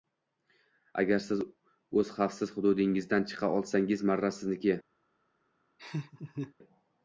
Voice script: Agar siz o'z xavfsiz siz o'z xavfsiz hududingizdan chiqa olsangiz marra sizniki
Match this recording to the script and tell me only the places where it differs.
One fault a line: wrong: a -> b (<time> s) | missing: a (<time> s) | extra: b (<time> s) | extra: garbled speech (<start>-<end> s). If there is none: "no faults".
missing: siz o'z xavfsiz (2.5 s)